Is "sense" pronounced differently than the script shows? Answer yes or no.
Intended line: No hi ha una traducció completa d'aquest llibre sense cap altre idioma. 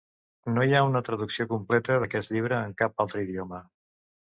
yes